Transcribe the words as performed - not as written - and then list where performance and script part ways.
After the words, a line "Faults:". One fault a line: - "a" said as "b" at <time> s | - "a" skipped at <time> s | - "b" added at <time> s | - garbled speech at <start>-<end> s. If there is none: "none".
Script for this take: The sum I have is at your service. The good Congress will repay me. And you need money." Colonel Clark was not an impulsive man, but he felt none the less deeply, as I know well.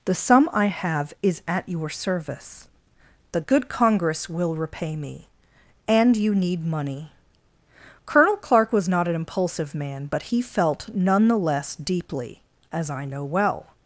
The sum I have is at your service. The good Congress will repay me. And you need money." Colonel Clark was not an impulsive man, but he felt none the less deeply, as I know well.
Faults:
none